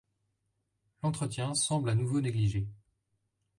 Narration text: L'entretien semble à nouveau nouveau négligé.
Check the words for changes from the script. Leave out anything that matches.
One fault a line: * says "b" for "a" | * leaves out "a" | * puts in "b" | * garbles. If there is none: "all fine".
* leaves out "nouveau"